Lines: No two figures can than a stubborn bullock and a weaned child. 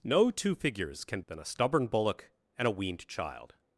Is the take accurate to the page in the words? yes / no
yes